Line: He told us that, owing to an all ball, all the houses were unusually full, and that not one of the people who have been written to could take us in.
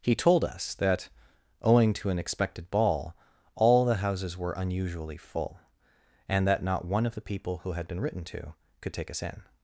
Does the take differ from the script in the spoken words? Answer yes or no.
yes